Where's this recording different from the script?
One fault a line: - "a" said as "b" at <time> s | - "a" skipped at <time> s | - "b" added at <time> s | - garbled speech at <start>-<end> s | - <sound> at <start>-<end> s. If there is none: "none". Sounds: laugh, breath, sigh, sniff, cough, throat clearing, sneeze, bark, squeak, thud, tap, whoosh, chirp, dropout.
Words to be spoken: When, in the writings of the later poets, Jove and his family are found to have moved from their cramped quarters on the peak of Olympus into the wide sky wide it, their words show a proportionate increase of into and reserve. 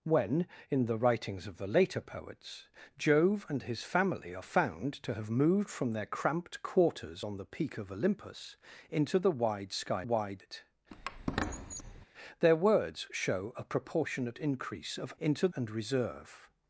- squeak at 10.9-12.1 s